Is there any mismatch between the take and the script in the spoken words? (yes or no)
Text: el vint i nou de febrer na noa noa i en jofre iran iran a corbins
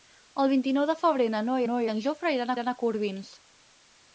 no